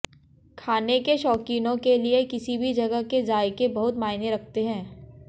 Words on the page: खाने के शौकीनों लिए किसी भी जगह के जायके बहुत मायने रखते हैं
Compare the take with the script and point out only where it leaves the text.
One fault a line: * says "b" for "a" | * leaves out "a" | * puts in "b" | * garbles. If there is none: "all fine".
* puts in "के"